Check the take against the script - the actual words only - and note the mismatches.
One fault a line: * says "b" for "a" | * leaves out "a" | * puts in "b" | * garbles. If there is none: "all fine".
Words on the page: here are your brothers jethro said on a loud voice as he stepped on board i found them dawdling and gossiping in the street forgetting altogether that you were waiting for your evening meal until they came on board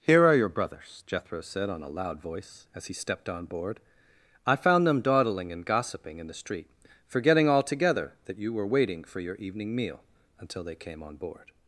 all fine